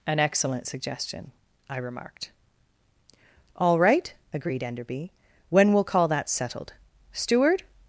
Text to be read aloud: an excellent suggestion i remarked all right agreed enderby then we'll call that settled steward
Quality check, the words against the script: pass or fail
fail